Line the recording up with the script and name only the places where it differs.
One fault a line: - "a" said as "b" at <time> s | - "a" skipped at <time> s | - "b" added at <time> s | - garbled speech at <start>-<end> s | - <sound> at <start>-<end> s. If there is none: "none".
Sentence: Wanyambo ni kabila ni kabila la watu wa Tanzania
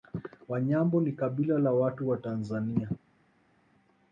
- "ni kabila" skipped at 1.6 s